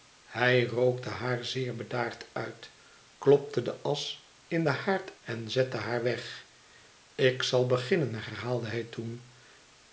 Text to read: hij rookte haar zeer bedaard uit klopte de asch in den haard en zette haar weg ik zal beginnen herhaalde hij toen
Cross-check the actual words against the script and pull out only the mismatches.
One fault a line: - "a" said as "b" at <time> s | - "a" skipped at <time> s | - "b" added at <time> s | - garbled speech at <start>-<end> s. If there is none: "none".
none